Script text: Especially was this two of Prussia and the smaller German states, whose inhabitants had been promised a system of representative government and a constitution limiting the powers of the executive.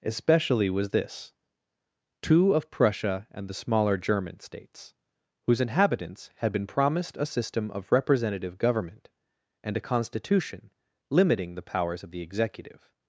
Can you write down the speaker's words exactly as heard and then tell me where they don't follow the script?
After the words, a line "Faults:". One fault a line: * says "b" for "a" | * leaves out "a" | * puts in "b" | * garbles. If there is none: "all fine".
Especially was this two of Prussia and the smaller German states, whose inhabitants had been promised a system of representative government and a constitution limiting the powers of the executive.
Faults:
all fine